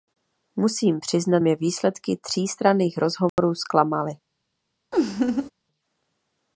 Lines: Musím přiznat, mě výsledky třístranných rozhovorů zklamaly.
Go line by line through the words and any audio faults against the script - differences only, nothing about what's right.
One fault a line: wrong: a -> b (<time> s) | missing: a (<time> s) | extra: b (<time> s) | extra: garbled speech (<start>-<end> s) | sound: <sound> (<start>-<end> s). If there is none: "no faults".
sound: dropout (3.3-3.4 s)
sound: laugh (4.9-5.5 s)